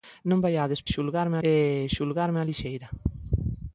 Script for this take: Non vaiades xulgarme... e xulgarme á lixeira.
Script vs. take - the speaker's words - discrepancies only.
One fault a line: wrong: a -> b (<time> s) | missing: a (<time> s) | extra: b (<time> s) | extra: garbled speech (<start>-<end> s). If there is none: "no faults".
no faults